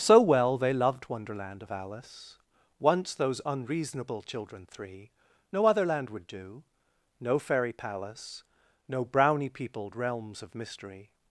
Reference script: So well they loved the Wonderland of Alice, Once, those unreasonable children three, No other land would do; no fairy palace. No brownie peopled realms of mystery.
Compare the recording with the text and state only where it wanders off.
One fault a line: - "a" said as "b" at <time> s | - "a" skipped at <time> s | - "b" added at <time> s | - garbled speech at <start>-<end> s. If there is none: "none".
- "the" skipped at 1.1 s